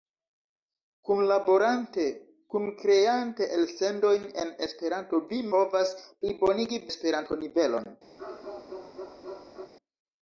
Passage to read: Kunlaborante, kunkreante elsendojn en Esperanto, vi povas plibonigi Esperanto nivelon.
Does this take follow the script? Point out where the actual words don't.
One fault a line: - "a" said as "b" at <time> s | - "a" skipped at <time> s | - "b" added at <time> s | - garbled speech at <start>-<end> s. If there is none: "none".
none